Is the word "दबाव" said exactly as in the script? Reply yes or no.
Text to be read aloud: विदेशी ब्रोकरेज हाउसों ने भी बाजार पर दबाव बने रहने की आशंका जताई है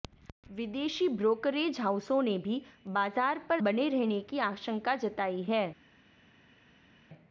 no